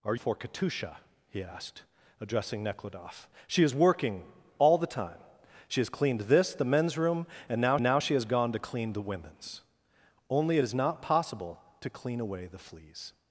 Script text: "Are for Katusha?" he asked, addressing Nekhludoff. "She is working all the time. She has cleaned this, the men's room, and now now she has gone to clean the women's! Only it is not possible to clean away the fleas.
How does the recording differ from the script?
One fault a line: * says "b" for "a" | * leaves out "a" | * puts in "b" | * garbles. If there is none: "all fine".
all fine